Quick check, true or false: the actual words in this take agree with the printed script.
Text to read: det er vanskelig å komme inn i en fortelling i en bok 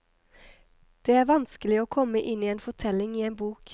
true